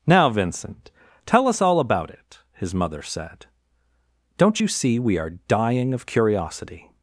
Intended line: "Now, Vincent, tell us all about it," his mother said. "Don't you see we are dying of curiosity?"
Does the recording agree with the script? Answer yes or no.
yes